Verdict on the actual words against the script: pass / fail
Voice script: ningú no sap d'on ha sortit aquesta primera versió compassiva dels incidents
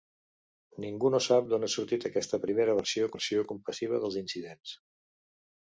fail